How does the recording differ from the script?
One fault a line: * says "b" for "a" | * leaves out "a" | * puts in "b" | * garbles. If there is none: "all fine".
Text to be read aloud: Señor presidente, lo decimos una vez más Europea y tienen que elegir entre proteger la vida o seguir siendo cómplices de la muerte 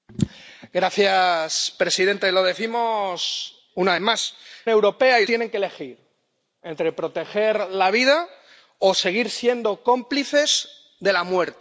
all fine